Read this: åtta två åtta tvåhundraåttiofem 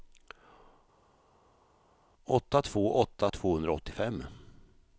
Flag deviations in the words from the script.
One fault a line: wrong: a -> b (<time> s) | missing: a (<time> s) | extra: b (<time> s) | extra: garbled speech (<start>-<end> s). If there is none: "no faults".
no faults